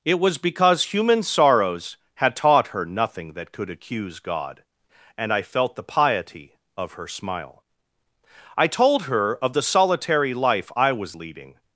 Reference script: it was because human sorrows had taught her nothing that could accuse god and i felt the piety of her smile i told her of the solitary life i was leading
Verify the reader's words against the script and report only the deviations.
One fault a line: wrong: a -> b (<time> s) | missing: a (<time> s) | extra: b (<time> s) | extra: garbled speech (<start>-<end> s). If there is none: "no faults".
no faults